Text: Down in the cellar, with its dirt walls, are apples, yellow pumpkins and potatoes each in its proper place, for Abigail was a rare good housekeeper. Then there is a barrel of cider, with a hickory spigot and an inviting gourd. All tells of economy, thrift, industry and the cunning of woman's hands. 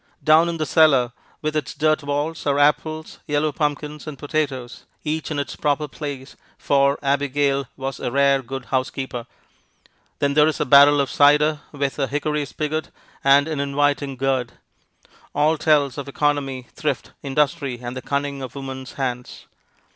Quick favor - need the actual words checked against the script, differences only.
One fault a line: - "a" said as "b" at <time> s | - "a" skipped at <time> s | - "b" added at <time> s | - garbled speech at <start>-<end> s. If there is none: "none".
none